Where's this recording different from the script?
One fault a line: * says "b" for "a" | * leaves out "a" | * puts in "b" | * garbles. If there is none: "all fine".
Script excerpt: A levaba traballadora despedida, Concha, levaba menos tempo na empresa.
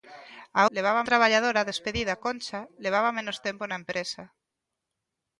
all fine